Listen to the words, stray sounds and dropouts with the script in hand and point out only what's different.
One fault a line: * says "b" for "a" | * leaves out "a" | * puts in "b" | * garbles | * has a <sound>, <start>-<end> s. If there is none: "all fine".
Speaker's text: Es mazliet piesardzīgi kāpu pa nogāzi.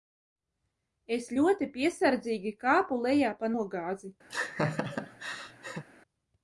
* says "ļoti" for "mazliet"
* puts in "lejā"
* has a laugh, 4.3-5.8 s